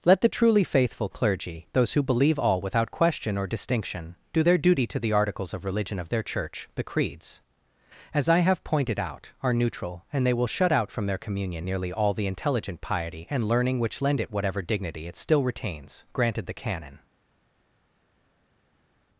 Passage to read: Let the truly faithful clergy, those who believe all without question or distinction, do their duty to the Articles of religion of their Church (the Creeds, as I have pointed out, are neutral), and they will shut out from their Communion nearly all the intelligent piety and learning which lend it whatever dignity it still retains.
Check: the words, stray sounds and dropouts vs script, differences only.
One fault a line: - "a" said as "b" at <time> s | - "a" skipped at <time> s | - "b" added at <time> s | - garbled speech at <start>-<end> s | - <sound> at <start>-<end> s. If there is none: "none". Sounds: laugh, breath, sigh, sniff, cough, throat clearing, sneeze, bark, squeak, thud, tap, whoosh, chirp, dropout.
- "Granted the canon" added at 16.1 s